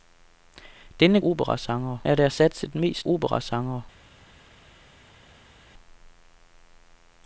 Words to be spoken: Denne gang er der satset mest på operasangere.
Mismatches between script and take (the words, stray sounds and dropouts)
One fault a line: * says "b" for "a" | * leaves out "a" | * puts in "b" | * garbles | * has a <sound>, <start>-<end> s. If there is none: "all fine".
* says "operasangere" for "gang"
* leaves out "på"